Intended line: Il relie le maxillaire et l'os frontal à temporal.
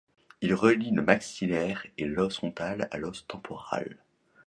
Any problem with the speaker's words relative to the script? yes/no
yes